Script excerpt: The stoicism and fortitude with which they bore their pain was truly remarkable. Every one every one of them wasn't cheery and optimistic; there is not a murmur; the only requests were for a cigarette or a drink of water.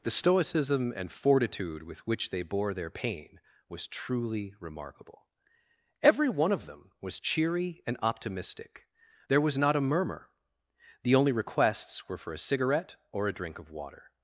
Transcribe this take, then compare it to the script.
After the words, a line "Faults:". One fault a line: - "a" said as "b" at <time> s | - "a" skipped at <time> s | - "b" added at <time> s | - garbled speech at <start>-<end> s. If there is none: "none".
The stoicism and fortitude with which they bore their pain was truly remarkable. Every one of them was cheery and optimistic; there was not a murmur; the only requests were for a cigarette or a drink of water.
Faults:
- "every one" skipped at 6.5 s
- "wasn't" said as "was" at 7.0 s
- "is" said as "was" at 9.4 s